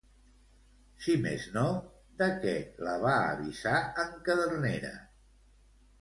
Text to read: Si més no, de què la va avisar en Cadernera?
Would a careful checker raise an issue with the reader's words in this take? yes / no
no